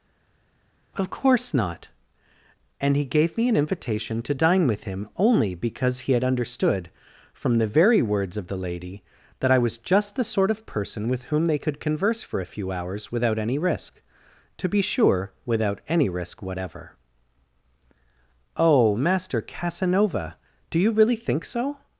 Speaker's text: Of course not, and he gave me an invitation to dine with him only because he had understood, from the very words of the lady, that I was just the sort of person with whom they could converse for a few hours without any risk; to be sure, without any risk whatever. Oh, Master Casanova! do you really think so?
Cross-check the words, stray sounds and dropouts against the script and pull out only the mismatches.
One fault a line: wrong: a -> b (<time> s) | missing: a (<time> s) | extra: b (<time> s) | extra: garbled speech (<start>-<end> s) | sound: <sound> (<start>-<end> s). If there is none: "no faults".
no faults